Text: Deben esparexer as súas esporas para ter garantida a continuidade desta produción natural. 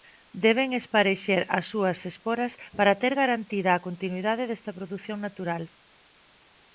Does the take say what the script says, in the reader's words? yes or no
yes